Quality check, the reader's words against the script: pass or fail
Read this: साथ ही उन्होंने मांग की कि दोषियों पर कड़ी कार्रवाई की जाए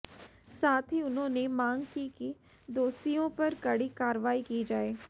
pass